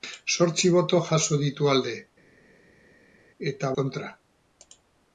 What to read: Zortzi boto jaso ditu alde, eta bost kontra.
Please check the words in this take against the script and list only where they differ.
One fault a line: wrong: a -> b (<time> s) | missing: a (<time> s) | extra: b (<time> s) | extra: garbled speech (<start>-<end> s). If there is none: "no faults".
missing: bost (3.7 s)